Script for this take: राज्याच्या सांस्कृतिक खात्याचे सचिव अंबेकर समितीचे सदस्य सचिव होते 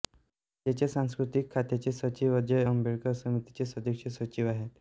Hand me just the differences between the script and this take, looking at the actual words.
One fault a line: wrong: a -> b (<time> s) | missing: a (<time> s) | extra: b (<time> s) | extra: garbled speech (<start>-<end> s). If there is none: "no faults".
extra: अजय (2.4 s)
wrong: होते -> आहेत (4.5 s)